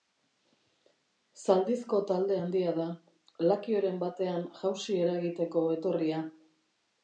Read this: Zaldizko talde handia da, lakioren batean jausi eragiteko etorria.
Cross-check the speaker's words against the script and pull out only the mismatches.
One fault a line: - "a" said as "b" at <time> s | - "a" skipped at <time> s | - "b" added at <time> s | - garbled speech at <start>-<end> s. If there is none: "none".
none